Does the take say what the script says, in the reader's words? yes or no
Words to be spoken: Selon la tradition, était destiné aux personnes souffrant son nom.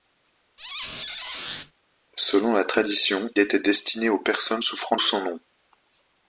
yes